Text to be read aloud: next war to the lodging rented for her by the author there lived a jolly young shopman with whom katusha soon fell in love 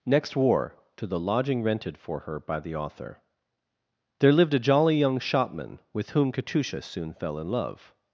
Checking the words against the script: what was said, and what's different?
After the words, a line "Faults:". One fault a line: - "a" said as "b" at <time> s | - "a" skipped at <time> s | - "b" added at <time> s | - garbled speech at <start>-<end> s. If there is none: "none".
next war to the lodging rented for her by the author there lived a jolly young shopman with whom katusha soon fell in love
Faults:
none